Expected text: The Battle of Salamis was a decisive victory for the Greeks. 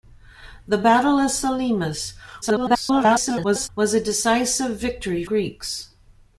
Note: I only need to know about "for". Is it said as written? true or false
false